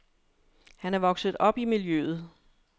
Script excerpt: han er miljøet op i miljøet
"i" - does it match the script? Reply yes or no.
yes